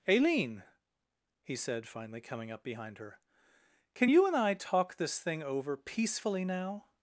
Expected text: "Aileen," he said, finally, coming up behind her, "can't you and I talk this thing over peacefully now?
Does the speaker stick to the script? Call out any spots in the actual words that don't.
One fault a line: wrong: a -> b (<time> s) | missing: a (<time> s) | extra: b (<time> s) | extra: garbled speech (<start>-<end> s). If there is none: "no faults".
wrong: can't -> can (3.9 s)